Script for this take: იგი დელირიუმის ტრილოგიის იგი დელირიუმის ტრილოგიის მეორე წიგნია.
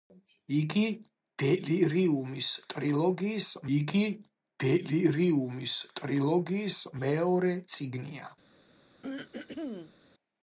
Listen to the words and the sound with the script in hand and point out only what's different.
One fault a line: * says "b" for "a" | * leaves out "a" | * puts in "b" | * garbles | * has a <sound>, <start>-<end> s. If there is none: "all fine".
* has a throat clearing, 9.0-9.9 s